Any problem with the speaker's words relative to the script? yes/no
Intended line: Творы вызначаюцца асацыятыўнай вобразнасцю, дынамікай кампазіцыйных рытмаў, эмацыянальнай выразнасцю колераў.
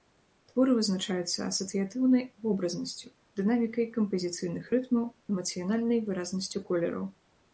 no